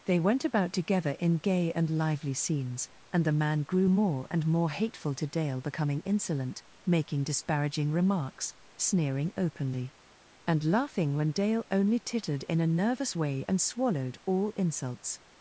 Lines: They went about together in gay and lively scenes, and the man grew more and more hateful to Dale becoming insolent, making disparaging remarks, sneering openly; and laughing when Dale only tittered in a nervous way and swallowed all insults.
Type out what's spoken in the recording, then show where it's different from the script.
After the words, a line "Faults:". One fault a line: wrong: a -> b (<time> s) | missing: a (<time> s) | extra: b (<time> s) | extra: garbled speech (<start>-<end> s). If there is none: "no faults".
They went about together in gay and lively scenes, and the man grew more and more hateful to Dale becoming insolent, making disparaging remarks, sneering openly; and laughing when Dale only tittered in a nervous way and swallowed all insults.
Faults:
no faults